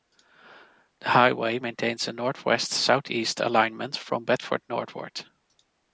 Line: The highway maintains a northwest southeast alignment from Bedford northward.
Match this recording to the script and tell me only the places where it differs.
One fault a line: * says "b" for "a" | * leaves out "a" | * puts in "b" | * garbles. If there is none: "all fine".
all fine